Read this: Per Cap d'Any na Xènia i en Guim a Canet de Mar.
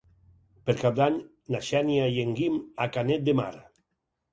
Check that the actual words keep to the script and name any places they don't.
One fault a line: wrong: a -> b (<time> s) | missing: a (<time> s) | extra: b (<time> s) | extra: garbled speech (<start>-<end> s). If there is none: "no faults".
no faults